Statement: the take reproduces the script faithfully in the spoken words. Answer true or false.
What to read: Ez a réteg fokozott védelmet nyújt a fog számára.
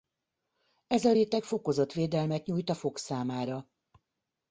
true